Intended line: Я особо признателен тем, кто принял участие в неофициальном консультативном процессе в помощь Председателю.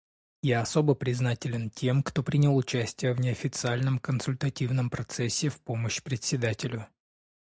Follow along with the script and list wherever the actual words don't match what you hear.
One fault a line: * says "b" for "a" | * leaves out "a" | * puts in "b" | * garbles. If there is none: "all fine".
all fine